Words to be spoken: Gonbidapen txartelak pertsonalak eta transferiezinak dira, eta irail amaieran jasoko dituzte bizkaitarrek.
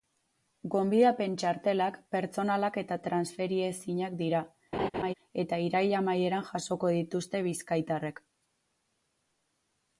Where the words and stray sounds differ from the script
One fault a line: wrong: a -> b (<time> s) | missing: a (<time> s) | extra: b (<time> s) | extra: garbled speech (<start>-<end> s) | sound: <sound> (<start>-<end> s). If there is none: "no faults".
sound: laugh (4.7-5.1 s)